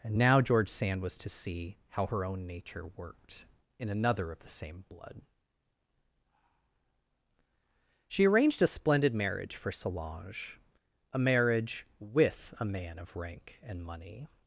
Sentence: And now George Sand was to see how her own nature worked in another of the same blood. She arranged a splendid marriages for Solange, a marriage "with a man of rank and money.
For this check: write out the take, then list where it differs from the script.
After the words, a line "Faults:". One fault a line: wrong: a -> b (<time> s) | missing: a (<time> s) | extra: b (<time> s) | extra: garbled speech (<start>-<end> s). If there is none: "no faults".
And now George Sand was to see how her own nature worked in another of the same blood. She arranged a splendid marriage for Solange, a marriage "with a man of rank and money.
Faults:
wrong: marriages -> marriage (9.1 s)